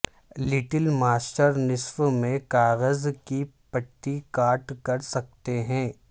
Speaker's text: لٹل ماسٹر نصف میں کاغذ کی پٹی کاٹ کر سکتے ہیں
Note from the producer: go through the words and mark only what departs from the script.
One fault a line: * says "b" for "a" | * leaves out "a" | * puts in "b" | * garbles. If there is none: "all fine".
all fine